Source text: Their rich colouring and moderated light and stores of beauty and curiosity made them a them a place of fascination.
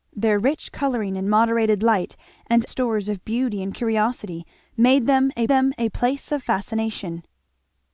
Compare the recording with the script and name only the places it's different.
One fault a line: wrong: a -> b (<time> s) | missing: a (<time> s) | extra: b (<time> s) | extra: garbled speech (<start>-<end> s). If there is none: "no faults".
no faults